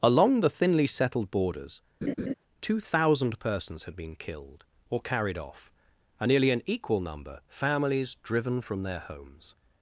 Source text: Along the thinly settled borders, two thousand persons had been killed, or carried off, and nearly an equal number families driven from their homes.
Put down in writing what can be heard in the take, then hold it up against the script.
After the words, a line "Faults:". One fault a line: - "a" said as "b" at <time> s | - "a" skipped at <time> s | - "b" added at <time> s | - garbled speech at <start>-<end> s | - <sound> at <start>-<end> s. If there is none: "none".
Along the thinly settled borders, two thousand persons had been killed, or carried off, and nearly an equal number families driven from their homes.
Faults:
- laugh at 2.0-2.3 s